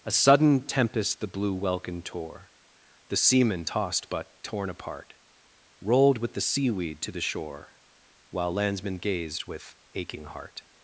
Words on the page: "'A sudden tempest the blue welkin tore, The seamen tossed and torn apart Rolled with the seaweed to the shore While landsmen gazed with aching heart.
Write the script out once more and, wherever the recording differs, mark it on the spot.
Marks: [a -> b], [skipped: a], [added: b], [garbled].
"'A sudden tempest the blue welkin tore, The seamen tossed [and -> but] torn apart Rolled with the seaweed to the shore While landsmen gazed with aching heart.